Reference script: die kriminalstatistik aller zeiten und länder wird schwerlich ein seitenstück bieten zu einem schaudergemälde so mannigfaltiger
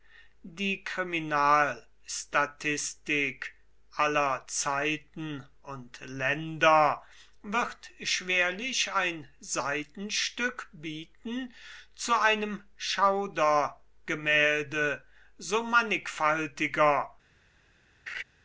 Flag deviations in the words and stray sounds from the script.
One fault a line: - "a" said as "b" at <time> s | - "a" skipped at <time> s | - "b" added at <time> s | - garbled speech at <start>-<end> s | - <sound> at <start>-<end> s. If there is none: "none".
- laugh at 18.1-18.2 s